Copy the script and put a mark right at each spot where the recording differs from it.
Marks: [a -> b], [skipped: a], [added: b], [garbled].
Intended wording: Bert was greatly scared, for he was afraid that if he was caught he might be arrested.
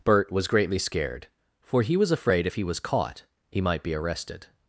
Bert was greatly scared, for he was afraid [skipped: that] if he was caught he might be arrested.